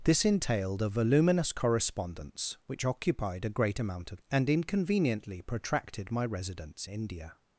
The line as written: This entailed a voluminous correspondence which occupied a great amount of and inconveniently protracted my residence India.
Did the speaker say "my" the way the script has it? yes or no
yes